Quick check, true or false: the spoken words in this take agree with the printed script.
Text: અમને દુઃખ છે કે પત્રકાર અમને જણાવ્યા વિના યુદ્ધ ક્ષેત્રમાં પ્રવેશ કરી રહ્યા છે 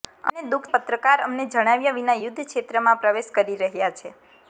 false